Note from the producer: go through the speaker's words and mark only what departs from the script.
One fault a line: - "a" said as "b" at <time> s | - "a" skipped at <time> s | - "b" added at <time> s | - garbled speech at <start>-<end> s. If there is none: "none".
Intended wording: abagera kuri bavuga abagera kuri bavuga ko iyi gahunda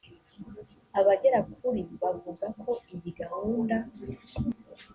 - "abagera kuri bavuga" skipped at 2.5 s